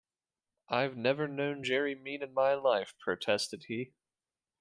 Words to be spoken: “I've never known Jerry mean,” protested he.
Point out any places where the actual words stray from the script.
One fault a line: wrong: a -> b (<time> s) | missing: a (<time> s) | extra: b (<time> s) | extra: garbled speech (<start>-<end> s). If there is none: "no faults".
extra: in my life (2.2 s)